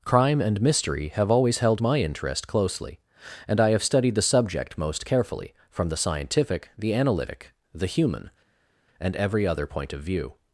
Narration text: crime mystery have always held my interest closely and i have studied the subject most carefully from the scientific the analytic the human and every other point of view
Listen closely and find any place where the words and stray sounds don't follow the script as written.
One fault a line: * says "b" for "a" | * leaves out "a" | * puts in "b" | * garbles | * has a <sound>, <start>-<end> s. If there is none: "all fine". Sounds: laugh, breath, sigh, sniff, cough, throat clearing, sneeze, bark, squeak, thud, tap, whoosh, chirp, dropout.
* puts in "and"